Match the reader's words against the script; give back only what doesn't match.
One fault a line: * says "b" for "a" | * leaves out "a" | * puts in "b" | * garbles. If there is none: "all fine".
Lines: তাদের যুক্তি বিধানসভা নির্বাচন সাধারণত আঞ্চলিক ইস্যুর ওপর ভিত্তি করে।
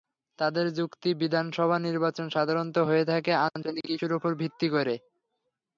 * puts in "হয়ে থাকে"